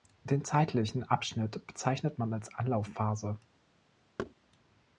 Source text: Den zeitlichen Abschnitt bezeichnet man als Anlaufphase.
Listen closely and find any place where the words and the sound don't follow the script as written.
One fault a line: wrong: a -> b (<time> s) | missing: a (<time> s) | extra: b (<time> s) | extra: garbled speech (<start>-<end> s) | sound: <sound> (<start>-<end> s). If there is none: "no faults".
sound: thud (4.2-4.3 s)